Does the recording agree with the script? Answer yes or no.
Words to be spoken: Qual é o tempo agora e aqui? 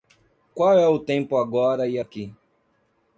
yes